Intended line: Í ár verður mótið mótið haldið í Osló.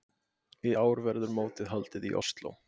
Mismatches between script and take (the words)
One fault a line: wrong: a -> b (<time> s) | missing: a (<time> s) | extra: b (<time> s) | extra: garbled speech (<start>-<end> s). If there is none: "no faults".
missing: mótið (1.7 s)